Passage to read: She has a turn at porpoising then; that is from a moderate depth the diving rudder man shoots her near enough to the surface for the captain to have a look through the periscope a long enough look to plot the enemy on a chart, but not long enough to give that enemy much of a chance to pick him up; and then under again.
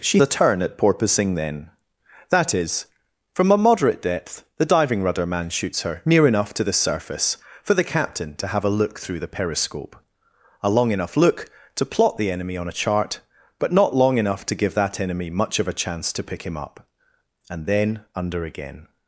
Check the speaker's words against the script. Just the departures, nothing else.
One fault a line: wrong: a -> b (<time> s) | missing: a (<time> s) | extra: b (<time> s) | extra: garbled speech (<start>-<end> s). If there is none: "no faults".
missing: has (0.2 s)